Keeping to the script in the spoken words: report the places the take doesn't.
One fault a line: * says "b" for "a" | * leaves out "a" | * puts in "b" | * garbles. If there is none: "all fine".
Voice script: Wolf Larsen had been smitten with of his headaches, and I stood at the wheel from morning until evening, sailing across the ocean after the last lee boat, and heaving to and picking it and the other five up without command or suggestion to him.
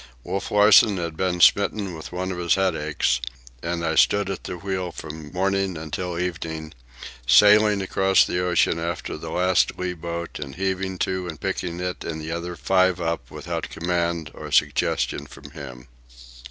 * puts in "one"
* says "from" for "to"